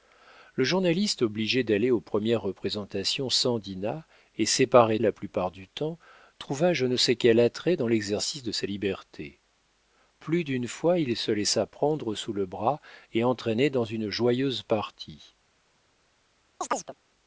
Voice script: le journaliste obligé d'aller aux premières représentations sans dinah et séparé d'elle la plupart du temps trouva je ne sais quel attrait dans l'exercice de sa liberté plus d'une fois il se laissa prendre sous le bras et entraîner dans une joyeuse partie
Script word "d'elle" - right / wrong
wrong